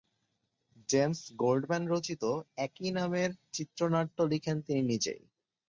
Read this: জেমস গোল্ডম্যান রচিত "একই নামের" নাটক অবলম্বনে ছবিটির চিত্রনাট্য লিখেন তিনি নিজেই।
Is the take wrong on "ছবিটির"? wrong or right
wrong